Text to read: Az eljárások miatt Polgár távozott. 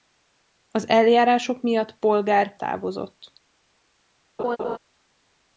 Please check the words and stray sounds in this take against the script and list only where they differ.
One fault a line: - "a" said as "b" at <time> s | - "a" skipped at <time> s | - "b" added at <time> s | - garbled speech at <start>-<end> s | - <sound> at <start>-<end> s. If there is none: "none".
- laugh at 4.4-4.8 s